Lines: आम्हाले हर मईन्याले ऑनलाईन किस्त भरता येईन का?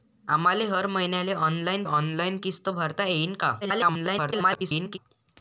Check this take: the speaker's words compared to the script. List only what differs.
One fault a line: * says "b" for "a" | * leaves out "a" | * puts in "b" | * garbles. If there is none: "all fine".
* puts in "ऑनलाईन"
* garbles